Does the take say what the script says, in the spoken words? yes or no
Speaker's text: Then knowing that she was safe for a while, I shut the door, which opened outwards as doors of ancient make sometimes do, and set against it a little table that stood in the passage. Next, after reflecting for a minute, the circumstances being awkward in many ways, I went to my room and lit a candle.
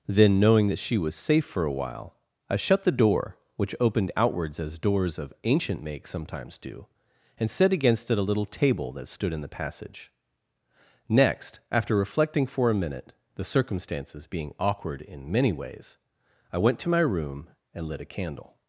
yes